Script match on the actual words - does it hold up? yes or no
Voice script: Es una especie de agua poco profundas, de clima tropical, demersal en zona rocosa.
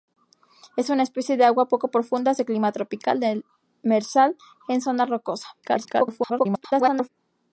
no